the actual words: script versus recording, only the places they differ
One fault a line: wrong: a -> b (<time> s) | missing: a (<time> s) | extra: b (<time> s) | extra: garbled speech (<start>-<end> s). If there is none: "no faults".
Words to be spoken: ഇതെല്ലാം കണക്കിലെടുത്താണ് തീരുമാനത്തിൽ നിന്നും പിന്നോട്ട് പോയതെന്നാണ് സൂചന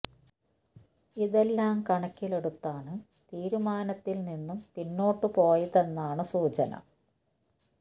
no faults